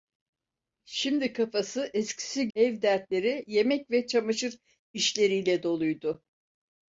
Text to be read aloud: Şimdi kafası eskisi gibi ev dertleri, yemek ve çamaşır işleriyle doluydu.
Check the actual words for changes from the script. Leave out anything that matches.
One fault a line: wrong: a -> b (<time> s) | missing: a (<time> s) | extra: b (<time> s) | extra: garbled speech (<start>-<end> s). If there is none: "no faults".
missing: gibi (2.5 s)